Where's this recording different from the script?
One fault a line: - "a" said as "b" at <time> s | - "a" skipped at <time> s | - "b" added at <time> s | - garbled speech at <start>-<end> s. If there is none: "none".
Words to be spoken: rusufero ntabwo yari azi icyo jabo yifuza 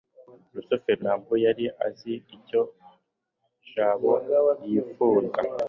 none